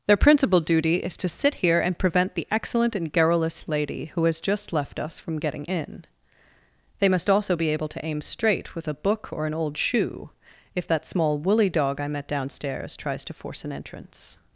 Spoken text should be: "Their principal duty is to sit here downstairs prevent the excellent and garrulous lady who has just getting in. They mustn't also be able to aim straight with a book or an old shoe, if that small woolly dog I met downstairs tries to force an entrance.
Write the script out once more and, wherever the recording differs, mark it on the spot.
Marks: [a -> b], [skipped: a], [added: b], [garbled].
"Their principal duty is to sit here [downstairs -> and] prevent the excellent and garrulous lady who has just [added: left us from] getting in. They [mustn't -> must] also be able to aim straight with a book or an old shoe, if that small woolly dog I met downstairs tries to force an entrance.